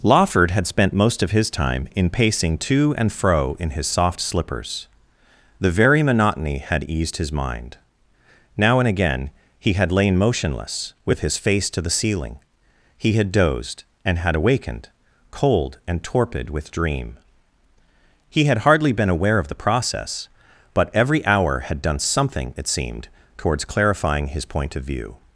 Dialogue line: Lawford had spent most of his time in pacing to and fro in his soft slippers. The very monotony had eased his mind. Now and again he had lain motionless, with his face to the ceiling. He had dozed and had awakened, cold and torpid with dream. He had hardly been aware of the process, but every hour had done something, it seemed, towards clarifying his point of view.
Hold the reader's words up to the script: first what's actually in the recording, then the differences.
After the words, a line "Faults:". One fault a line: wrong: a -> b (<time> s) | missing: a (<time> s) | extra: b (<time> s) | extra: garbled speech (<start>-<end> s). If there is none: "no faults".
Lawford had spent most of his time in pacing to and fro in his soft slippers. The very monotony had eased his mind. Now and again he had lain motionless, with his face to the ceiling. He had dozed and had awakened, cold and torpid with dream. He had hardly been aware of the process, but every hour had done something, it seemed, towards clarifying his point of view.
Faults:
no faults